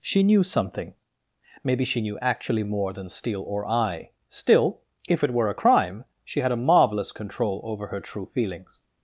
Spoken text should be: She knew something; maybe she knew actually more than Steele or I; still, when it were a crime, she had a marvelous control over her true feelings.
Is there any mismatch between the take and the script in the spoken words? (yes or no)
yes